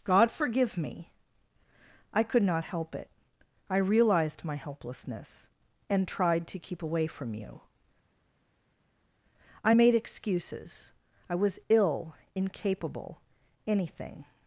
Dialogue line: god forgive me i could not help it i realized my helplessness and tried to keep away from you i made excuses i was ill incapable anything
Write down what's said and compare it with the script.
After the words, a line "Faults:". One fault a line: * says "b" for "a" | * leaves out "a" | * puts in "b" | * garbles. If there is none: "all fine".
god forgive me i could not help it i realized my helplessness and tried to keep away from you i made excuses i was ill incapable anything
Faults:
all fine